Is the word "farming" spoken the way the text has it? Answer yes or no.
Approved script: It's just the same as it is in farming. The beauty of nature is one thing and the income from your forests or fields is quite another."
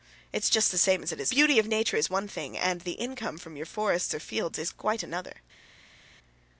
no